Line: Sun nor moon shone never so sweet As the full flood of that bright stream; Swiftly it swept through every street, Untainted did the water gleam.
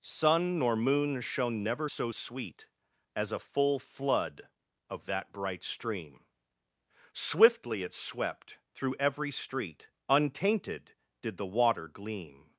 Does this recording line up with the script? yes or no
no